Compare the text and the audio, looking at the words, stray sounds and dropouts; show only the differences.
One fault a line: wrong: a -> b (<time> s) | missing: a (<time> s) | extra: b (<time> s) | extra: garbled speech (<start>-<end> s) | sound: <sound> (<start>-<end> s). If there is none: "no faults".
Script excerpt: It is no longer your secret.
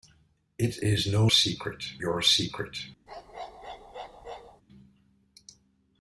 wrong: longer -> secret (1.3 s)
sound: bark (3.1-4.6 s)